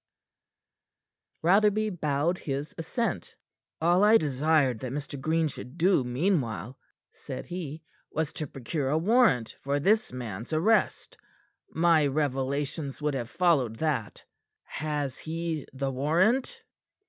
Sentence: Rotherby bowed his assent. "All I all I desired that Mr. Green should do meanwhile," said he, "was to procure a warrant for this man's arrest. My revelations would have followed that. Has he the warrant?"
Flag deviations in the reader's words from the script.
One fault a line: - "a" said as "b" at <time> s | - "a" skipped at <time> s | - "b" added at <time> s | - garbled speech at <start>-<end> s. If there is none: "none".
- "all I" skipped at 4.2 s